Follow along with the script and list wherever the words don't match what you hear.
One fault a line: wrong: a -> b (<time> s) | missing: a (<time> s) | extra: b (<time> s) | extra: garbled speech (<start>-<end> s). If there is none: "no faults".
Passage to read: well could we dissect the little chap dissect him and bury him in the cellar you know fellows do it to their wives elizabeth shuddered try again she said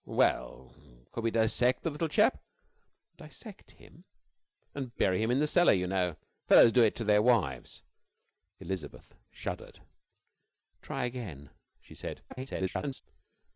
extra: garbled speech (12.3-13.0 s)